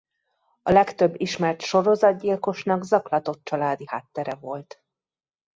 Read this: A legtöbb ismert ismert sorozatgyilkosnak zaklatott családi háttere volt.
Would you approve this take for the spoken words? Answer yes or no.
no